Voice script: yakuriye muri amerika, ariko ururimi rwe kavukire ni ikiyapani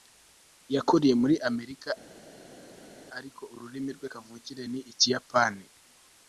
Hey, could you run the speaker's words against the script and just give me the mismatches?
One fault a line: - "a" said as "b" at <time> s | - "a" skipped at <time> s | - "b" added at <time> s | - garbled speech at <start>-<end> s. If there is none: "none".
none